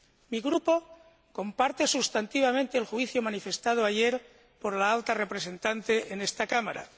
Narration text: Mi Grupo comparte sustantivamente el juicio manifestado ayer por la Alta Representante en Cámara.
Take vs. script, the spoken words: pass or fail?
fail